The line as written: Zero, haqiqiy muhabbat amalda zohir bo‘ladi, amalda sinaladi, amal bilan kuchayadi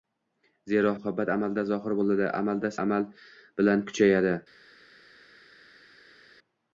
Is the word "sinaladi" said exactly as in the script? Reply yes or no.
no